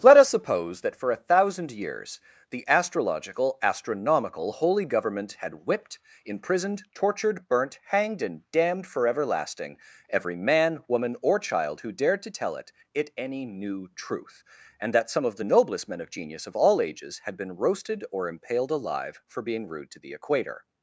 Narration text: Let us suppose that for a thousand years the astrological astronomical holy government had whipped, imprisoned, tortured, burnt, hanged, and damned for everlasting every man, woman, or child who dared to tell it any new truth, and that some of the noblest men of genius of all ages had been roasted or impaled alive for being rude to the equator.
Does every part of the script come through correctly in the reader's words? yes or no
no